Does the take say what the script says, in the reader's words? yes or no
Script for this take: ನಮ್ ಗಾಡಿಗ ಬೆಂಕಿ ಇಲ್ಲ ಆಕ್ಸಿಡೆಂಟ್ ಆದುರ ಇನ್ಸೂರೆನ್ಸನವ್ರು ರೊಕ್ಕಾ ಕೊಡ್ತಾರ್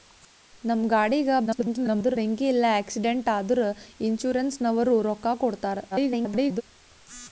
no